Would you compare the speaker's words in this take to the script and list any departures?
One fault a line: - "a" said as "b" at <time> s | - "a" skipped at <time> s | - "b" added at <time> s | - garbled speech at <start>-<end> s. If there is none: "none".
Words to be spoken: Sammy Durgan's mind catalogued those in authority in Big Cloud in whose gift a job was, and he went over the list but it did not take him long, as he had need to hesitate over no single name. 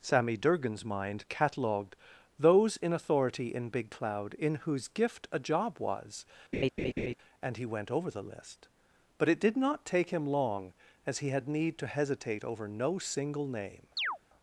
none